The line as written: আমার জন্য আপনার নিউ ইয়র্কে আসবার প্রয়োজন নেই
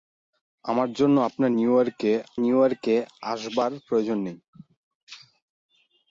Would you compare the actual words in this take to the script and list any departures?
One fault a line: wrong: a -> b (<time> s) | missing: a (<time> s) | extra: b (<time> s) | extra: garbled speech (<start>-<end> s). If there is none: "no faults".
extra: নিউ ইয়র্কে (2.3 s)